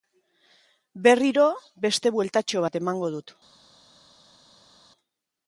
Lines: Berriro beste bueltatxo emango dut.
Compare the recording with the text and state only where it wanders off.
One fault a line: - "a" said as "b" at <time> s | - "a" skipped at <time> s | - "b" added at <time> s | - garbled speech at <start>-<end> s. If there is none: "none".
- "bat" added at 2.6 s